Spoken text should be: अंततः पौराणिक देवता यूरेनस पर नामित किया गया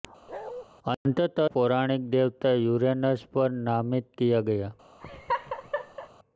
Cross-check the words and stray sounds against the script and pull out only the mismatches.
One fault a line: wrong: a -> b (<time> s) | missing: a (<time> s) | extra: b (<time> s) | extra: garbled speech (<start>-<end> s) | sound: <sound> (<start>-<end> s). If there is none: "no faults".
sound: bark (0.3-0.6 s)
sound: laugh (5.0-6.1 s)